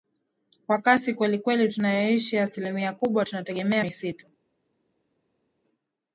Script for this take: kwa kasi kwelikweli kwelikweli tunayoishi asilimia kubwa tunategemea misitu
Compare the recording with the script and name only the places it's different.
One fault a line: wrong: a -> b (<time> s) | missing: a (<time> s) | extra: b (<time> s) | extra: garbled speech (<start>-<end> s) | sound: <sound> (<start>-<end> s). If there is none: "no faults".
missing: kwelikweli (1.7 s)